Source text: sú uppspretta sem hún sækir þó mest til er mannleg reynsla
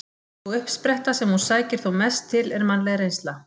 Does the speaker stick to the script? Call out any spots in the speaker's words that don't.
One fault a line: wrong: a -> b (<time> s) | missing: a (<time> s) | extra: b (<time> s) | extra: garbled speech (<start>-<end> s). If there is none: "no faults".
no faults